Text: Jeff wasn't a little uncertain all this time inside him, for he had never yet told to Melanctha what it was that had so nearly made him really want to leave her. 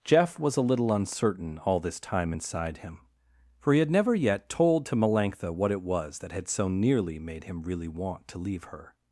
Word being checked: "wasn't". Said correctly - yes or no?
no